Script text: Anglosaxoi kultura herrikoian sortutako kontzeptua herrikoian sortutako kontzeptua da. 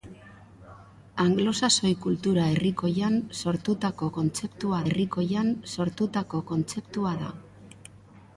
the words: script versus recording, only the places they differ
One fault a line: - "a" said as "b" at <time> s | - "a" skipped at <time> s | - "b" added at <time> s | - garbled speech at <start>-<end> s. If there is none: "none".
none